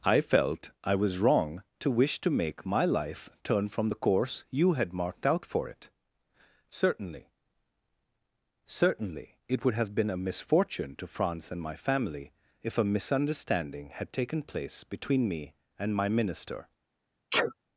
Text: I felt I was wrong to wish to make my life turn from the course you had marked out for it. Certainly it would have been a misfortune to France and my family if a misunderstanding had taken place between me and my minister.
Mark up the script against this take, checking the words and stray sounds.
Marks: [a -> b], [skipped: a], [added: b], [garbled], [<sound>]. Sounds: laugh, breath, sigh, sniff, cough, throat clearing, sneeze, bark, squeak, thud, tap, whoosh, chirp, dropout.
I felt I was wrong to wish to make my life turn from the course you had marked out for it. Certainly [added: Certainly] it would have been a misfortune to France and my family if a misunderstanding had taken place between me and my minister. [sneeze]